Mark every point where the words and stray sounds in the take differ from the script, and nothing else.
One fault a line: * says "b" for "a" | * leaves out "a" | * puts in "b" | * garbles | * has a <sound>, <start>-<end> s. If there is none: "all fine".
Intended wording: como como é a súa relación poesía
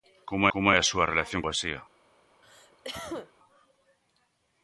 * has a cough, 2.4-3.3 s